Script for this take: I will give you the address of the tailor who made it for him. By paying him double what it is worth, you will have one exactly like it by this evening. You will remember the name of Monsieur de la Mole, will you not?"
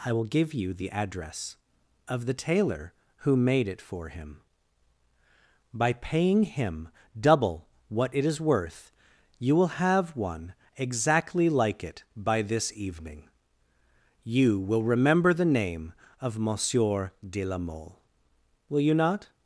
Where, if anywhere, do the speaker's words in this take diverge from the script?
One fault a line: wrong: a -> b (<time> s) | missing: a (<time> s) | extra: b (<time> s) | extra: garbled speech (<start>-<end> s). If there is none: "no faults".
no faults